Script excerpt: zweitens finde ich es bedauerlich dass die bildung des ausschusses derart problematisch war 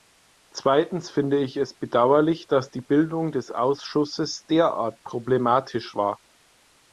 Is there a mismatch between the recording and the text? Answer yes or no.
no